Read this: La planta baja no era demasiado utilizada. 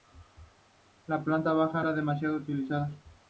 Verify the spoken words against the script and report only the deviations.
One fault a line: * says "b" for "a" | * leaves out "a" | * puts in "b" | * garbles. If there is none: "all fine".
* leaves out "no"